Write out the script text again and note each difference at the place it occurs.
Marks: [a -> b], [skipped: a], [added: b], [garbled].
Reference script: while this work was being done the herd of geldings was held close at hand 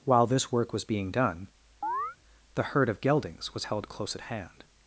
while this work was being done the herd of geldings was held close at hand